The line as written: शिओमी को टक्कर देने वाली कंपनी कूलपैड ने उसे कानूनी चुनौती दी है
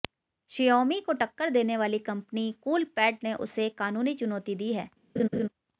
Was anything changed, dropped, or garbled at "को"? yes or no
no